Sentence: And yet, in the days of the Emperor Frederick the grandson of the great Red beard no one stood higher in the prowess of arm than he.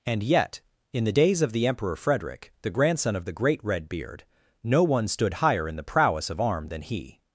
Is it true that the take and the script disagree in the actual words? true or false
false